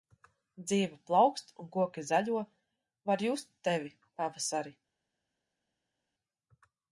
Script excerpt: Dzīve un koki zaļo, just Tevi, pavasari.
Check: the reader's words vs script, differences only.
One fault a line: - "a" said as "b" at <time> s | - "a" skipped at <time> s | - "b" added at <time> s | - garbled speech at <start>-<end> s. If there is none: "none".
- "plaukst" added at 1.1 s
- "var" added at 3.1 s